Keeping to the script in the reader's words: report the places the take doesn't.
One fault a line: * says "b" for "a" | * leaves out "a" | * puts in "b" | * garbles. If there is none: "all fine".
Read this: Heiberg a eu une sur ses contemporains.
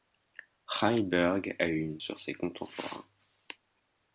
all fine